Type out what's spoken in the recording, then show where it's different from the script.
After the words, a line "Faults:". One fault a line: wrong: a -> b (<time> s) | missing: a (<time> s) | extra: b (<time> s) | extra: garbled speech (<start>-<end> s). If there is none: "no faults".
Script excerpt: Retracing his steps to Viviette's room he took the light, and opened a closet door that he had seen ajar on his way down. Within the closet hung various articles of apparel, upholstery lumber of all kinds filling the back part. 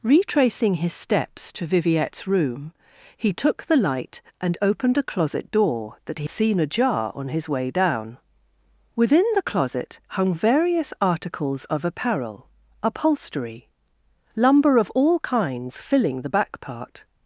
Retracing his steps to Viviette's room he took the light, and opened a closet door that he seen ajar on his way down. Within the closet hung various articles of apparel, upholstery lumber of all kinds filling the back part.
Faults:
missing: had (6.3 s)